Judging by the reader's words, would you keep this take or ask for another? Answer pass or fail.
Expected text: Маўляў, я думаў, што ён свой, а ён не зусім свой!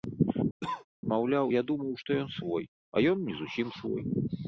pass